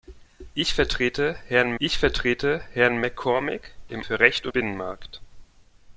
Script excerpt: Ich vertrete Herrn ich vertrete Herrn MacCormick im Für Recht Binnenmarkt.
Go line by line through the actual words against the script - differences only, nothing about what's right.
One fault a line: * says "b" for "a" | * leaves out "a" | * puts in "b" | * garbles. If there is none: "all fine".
all fine